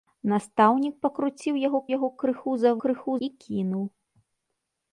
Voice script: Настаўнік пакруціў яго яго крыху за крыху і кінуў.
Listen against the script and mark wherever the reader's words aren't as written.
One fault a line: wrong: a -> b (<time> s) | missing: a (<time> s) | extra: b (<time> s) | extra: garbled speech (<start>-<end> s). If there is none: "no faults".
no faults